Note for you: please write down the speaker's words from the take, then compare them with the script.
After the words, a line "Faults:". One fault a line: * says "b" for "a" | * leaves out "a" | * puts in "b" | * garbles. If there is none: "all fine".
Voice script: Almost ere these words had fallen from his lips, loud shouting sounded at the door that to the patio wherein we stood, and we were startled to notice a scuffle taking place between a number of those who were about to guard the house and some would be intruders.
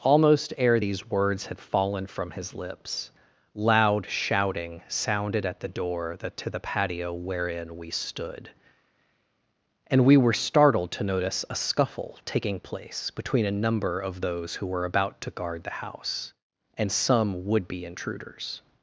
Almost ere these words had fallen from his lips, loud shouting sounded at the door that to the patio wherein we stood, and we were startled to notice a scuffle taking place between a number of those who were about to guard the house and some would be intruders.
Faults:
all fine